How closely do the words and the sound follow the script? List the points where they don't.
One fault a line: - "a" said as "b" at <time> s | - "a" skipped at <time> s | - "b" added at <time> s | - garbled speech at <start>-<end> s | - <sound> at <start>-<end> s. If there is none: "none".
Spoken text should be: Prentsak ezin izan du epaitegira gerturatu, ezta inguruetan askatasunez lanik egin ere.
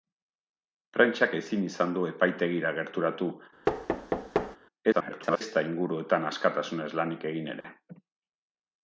- thud at 3.7-4.6 s
- garbled speech at 4.9-5.4 s
- dropout at 7.6-7.6 s